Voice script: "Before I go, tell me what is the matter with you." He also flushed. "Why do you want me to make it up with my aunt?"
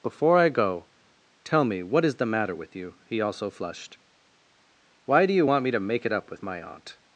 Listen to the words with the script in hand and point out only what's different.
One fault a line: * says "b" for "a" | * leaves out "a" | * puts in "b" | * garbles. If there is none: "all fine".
all fine